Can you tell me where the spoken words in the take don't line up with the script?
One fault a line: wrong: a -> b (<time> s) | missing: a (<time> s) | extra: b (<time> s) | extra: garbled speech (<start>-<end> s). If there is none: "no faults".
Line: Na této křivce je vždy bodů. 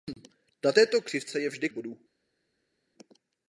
no faults